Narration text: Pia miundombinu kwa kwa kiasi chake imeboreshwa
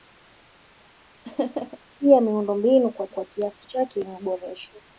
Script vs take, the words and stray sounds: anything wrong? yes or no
yes